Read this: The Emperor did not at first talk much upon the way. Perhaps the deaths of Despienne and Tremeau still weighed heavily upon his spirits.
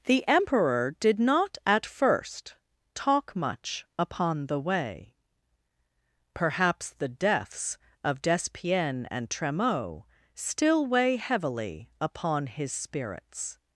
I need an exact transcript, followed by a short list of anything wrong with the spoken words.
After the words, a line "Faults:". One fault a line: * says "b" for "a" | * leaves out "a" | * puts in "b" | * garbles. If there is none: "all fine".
The Emperor did not at first talk much upon the way. Perhaps the deaths of Despienne and Tremeau still weigh heavily upon his spirits.
Faults:
* says "weigh" for "weighed"